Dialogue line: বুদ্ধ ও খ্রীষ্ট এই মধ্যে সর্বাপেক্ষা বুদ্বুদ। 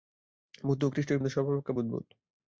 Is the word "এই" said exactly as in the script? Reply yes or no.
yes